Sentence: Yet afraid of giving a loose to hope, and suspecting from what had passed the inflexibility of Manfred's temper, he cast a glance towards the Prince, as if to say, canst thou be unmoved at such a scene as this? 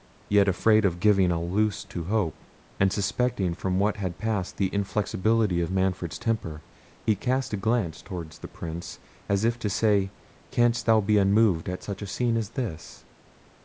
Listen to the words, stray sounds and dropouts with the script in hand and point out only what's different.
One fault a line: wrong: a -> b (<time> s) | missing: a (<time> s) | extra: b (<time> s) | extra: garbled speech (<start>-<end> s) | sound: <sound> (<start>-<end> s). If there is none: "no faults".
no faults